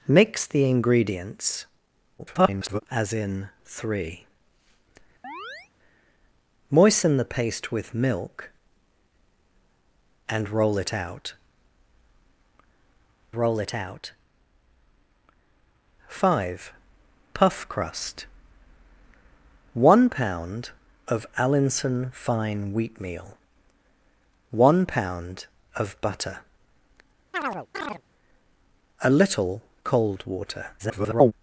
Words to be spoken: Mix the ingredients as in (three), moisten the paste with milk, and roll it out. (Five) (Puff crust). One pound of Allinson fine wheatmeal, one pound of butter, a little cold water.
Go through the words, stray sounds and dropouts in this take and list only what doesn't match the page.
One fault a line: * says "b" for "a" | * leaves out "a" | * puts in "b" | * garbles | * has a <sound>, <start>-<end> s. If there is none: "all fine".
* garbles
* has a chirp, 5.2-5.7 s
* puts in "roll it out"
* has a chirp, 27.3-28.0 s
* garbles